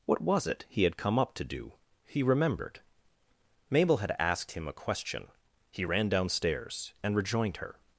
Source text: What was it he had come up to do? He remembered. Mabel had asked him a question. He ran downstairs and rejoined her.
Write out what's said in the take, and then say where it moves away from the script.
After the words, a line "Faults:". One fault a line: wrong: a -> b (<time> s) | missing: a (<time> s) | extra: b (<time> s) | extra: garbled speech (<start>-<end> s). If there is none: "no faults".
What was it he had come up to do? He remembered. Mabel had asked him a question. He ran downstairs and rejoined her.
Faults:
no faults